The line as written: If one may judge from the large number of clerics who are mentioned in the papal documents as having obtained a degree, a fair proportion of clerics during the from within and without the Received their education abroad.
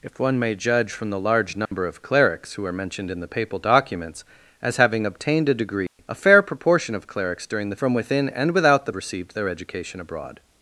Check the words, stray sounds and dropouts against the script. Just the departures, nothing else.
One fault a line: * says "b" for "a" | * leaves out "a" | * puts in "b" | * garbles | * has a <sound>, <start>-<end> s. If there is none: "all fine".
* has a dropout, 1.7-1.7 s
* has a dropout, 5.9-6.0 s